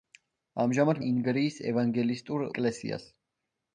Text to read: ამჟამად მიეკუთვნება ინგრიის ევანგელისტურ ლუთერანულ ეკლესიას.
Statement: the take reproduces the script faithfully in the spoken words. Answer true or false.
false